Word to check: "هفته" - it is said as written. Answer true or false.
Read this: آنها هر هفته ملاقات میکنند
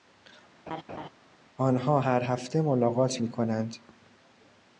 true